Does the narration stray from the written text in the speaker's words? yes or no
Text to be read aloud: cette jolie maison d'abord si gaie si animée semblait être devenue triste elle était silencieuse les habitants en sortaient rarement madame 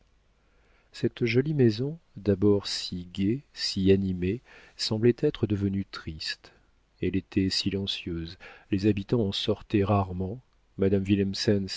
no